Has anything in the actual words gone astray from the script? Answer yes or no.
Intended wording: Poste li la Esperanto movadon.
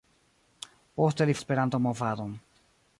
no